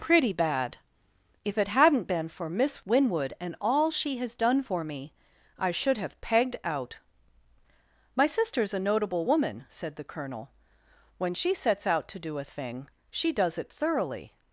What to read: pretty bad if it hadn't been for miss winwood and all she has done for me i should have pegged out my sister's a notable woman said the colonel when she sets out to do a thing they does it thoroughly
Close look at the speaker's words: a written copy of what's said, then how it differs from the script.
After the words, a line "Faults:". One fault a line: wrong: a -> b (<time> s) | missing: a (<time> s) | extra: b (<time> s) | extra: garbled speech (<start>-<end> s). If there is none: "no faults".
pretty bad if it hadn't been for miss winwood and all she has done for me i should have pegged out my sister's a notable woman said the colonel when she sets out to do a thing she does it thoroughly
Faults:
wrong: they -> she (13.1 s)